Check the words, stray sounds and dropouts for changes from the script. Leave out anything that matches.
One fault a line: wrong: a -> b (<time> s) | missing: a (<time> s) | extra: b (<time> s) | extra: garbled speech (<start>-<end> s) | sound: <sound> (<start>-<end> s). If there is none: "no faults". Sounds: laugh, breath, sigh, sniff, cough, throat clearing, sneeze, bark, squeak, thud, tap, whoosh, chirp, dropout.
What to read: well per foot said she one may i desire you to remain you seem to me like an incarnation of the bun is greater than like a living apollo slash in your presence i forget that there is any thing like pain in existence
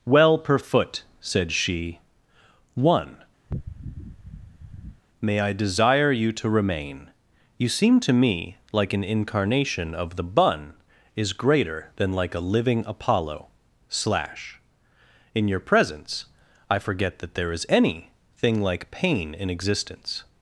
sound: sniff (3.5-5.0 s)